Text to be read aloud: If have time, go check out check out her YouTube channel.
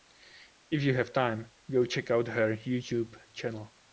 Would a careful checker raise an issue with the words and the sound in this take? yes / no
yes